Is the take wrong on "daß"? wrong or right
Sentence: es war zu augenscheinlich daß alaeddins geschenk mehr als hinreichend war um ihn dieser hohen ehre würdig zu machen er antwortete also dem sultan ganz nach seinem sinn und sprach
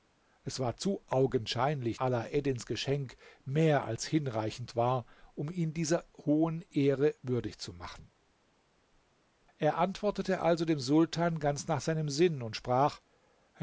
wrong